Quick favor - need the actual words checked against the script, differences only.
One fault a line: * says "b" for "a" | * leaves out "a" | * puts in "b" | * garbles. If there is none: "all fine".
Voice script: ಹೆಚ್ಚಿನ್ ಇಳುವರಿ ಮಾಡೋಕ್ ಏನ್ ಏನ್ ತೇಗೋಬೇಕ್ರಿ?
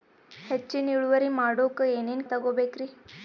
all fine